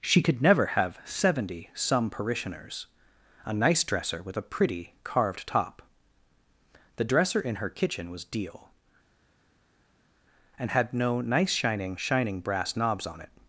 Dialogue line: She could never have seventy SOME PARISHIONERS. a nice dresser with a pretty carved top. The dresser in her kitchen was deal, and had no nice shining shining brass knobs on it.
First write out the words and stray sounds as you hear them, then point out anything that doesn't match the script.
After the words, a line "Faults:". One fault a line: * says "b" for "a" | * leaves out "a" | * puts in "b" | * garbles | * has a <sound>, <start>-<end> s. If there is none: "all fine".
She could never have seventy SOME PARISHIONERS. a nice dresser with a pretty carved top. The dresser in her kitchen was deal, and had no nice shining shining brass knobs on it.
Faults:
all fine